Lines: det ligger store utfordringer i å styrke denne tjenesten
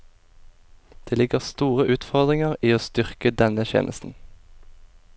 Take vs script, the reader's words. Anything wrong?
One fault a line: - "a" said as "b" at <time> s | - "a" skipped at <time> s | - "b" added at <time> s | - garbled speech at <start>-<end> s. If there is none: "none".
none